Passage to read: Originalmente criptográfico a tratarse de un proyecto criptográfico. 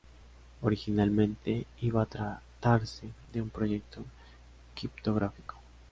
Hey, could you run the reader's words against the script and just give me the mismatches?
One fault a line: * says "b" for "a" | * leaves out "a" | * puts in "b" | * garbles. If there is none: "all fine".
* says "iba" for "criptográfico"